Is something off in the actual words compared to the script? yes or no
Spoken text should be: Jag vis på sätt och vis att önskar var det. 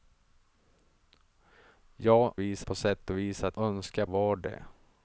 no